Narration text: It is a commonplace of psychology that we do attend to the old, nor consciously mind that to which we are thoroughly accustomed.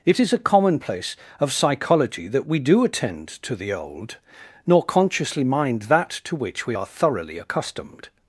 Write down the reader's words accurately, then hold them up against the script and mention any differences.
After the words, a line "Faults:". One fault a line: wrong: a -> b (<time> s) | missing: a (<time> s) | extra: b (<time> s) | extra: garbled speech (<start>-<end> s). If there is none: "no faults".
It is a commonplace of psychology that we do attend to the old, nor consciously mind that to which we are thoroughly accustomed.
Faults:
no faults